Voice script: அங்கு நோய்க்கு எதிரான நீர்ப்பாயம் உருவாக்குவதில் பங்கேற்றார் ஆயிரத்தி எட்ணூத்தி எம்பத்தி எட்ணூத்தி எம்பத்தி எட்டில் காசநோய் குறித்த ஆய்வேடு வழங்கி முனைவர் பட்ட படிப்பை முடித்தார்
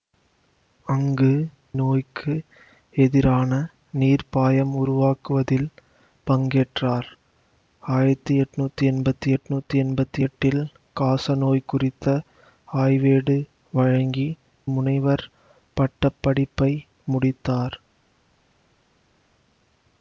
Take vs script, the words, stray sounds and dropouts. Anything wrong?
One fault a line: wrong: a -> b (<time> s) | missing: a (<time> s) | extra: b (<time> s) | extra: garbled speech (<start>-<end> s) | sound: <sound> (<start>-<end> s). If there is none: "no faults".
no faults